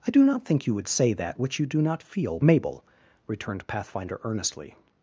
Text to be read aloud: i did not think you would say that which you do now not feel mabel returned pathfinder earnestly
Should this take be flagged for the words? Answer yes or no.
yes